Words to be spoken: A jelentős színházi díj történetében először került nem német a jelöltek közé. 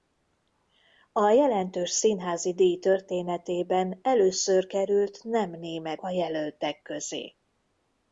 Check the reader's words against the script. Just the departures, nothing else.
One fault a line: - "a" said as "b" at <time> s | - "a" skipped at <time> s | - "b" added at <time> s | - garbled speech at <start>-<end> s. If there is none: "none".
none